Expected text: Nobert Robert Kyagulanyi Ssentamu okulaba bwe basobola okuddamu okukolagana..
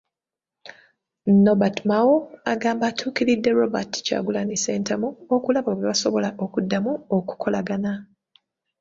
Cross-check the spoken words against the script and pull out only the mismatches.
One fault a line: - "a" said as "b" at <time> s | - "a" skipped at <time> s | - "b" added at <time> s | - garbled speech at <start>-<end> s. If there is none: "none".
- "Mao agamba atuukiridde" added at 1.9 s